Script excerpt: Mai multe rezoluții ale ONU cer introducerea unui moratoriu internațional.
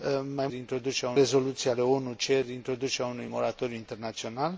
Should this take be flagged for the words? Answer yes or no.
yes